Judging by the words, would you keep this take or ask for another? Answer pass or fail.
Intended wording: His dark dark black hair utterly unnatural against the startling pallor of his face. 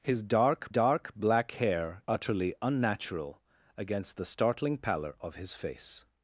pass